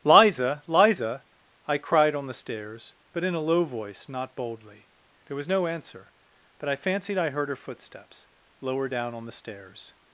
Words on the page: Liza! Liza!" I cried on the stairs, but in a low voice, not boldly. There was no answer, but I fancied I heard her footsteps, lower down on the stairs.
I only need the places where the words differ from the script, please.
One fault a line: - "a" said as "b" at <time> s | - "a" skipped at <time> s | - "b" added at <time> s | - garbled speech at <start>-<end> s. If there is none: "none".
none